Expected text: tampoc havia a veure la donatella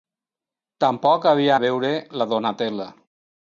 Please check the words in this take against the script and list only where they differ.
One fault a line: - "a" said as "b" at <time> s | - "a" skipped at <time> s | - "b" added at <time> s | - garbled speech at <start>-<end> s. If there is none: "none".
none